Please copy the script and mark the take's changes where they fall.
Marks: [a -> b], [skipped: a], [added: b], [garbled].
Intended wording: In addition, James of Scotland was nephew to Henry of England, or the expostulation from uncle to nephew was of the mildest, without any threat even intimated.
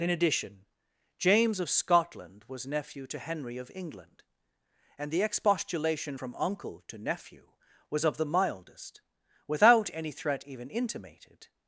In addition, James of Scotland was nephew to Henry of England, [or -> and] the expostulation from uncle to nephew was of the mildest, without any threat even intimated.